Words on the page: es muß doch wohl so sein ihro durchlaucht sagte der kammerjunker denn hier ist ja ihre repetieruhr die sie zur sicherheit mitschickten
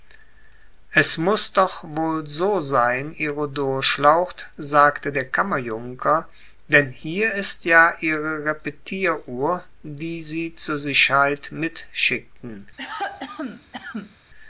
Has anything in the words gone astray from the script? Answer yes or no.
no